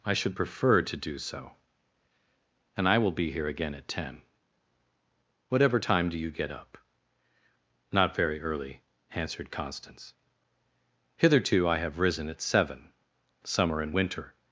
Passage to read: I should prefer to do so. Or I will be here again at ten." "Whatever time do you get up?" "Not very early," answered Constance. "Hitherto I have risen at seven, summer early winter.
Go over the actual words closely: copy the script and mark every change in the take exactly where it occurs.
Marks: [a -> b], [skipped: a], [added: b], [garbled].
I should prefer to do so. [Or -> And] I will be here again at ten." "Whatever time do you get up?" "Not very early," answered Constance. "Hitherto I have risen at seven, summer [early -> and] winter.